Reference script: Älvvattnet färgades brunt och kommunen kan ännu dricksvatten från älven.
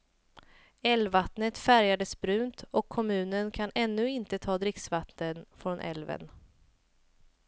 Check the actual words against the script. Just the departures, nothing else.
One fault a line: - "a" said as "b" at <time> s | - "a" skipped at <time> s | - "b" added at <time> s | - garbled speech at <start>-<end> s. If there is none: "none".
- "inte ta" added at 4.1 s